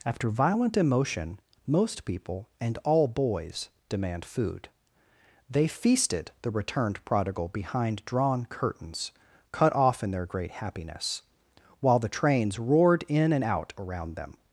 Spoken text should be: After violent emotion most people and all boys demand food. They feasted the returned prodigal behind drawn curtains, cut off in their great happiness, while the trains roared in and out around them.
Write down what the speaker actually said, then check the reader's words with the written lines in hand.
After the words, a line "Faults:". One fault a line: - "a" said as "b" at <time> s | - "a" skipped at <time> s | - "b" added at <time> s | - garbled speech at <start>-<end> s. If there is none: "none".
After violent emotion most people and all boys demand food. They feasted the returned prodigal behind drawn curtains, cut off in their great happiness, while the trains roared in and out around them.
Faults:
none